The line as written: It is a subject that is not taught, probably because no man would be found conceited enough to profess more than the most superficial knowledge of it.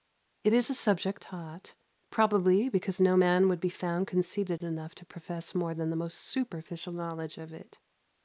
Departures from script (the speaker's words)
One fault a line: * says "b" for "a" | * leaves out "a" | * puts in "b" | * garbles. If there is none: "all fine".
* leaves out "that is not"